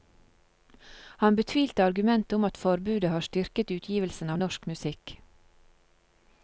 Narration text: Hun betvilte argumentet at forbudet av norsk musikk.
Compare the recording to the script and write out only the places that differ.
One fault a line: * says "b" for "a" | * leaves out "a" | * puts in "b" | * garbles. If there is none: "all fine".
* says "Han" for "Hun"
* puts in "om"
* puts in "har styrket utgivelsen"